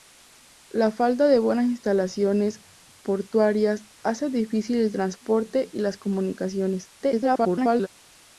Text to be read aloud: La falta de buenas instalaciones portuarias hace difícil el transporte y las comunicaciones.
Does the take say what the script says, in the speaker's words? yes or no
no